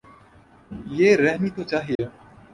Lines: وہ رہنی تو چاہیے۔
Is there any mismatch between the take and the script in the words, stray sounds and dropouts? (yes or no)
yes